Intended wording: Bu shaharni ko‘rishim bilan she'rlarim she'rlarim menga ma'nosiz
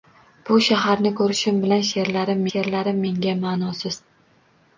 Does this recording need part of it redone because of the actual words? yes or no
no